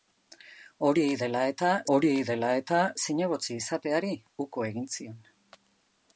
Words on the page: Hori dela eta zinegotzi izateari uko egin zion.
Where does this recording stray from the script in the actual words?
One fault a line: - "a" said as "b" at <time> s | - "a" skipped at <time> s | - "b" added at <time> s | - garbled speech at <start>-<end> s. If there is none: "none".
- "hori dela eta" added at 1.9 s